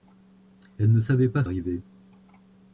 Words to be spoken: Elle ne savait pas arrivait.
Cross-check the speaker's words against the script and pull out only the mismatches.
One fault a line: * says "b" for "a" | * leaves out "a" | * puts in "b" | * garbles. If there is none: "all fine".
all fine